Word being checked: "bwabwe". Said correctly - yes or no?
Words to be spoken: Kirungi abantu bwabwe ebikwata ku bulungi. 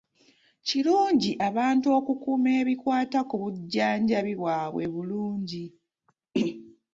no